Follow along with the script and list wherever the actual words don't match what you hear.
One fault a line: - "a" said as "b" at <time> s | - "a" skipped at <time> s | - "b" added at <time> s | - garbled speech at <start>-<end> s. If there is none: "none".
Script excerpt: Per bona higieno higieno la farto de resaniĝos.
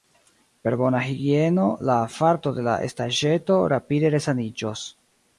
- "higieno" skipped at 1.6 s
- "la estaĵeto rapide" added at 2.7 s